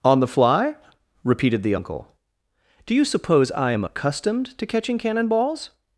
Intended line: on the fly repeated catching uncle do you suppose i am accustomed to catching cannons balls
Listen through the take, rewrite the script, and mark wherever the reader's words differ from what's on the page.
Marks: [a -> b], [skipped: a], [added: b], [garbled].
on the fly repeated [catching -> the] uncle do you suppose i am accustomed to catching [cannons -> cannon] balls